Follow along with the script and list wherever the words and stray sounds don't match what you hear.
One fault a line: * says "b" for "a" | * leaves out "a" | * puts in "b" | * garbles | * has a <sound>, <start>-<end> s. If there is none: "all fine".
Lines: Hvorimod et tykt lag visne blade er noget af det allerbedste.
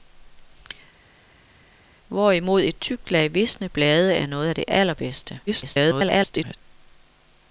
* garbles